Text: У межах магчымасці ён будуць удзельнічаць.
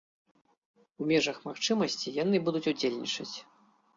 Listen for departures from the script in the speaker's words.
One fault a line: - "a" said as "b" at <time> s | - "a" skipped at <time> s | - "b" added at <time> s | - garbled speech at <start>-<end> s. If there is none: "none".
- "ён" said as "яны" at 2.2 s